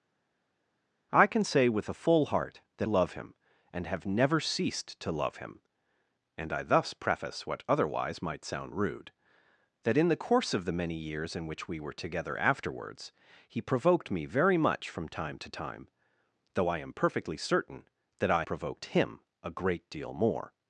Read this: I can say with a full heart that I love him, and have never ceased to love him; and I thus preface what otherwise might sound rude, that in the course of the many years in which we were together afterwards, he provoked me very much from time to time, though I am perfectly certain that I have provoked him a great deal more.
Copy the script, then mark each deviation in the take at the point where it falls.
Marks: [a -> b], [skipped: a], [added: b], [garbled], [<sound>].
I can say with a full heart that [skipped: I] love him, and have never ceased to love him; and I thus preface what otherwise might sound rude, that in the course of the many years in which we were together afterwards, he provoked me very much from time to time, though I am perfectly certain that I [skipped: have] provoked him a great deal more.